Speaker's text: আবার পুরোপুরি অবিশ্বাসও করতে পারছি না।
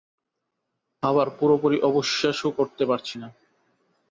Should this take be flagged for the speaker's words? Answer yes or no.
no